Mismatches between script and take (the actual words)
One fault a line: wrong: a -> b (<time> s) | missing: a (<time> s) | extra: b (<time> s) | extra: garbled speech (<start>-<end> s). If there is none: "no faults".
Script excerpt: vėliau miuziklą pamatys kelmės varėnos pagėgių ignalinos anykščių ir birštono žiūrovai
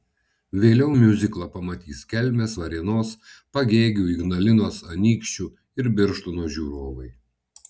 no faults